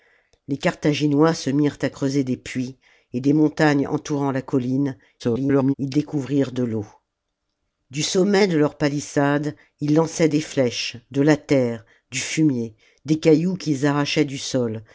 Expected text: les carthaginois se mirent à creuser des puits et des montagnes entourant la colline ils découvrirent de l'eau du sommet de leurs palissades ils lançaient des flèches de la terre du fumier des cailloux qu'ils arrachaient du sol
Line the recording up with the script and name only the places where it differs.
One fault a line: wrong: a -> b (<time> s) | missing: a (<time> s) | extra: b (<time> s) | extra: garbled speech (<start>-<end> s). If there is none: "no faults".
extra: garbled speech (5.2-5.7 s)